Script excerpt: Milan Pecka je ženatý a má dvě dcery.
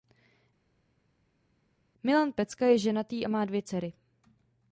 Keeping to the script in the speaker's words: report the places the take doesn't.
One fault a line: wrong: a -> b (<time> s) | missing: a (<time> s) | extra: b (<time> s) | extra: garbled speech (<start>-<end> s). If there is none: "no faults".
no faults